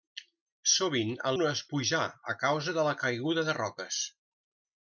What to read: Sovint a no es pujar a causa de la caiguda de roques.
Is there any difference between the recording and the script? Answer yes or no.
no